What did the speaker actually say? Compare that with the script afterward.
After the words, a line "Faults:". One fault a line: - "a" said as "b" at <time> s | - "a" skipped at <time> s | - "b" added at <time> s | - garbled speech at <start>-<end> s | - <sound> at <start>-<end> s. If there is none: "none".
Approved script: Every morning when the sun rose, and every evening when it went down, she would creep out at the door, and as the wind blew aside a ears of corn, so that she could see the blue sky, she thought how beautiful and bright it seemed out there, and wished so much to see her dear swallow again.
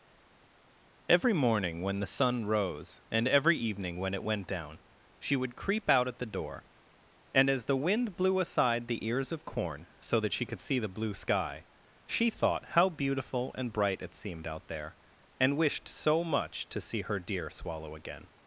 Every morning when the sun rose, and every evening when it went down, she would creep out at the door, and as the wind blew aside the ears of corn, so that she could see the blue sky, she thought how beautiful and bright it seemed out there, and wished so much to see her dear swallow again.
Faults:
- "a" said as "the" at 8.9 s